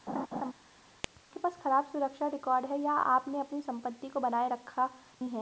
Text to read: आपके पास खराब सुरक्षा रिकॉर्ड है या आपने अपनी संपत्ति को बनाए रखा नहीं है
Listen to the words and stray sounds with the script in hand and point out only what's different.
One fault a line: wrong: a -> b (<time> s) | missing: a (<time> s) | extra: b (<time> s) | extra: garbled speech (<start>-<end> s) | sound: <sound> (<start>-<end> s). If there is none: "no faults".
sound: laugh (0.1-0.5 s)
missing: नहीं (4.9 s)